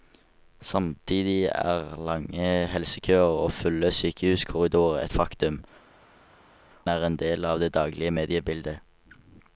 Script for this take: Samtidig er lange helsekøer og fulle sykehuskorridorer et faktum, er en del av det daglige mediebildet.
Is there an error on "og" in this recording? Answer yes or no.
no